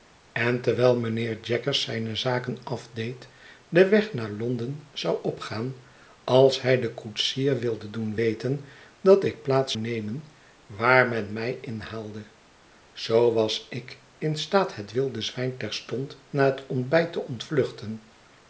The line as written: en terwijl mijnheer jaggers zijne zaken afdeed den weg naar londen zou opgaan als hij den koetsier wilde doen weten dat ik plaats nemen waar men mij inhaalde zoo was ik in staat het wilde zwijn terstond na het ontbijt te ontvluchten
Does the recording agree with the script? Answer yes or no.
yes